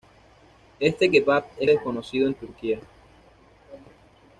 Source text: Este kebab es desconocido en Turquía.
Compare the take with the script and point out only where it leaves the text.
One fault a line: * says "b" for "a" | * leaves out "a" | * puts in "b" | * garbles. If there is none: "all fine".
all fine